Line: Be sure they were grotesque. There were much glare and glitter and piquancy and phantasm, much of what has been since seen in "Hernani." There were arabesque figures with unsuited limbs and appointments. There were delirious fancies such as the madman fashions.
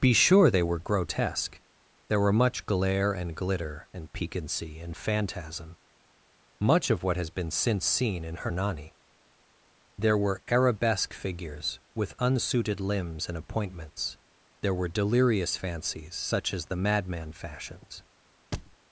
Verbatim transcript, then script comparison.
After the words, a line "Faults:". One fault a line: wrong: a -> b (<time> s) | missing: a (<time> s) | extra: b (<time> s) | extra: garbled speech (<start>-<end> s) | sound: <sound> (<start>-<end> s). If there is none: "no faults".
Be sure they were grotesque. There were much glare and glitter and piquancy and phantasm, much of what has been since seen in "Hernani." There were arabesque figures with unsuited limbs and appointments. There were delirious fancies such as the madman fashions.
Faults:
sound: thud (18.5-18.8 s)